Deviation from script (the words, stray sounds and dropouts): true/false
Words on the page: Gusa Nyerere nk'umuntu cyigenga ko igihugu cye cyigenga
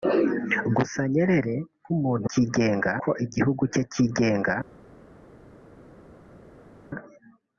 false